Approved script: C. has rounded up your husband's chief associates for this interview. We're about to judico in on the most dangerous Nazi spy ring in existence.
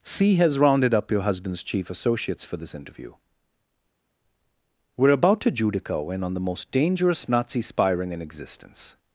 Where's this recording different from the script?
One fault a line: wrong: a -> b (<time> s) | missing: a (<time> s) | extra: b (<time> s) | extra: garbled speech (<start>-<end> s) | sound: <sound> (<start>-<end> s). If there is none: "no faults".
no faults